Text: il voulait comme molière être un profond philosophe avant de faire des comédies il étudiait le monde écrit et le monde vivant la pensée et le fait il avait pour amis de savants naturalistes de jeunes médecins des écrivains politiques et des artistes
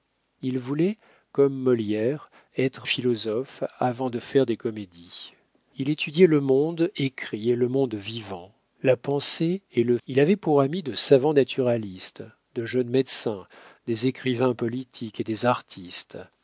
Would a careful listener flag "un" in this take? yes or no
yes